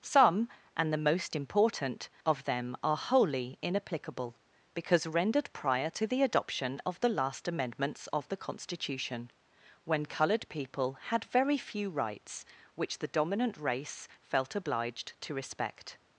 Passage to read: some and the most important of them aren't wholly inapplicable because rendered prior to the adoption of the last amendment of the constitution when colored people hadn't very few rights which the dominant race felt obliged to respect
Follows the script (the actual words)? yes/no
no